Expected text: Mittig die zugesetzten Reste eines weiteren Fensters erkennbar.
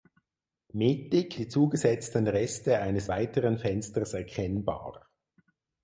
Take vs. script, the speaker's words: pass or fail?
pass